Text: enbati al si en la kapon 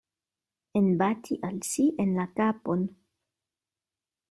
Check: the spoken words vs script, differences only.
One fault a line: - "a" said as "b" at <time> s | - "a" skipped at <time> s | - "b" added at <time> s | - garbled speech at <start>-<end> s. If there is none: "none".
none